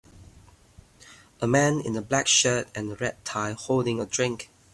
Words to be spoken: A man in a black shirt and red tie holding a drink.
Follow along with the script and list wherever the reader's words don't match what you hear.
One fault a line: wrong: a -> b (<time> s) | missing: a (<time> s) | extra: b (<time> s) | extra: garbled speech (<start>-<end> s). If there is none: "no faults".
no faults